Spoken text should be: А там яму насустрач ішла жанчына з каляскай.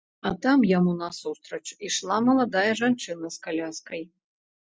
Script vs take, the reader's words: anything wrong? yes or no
yes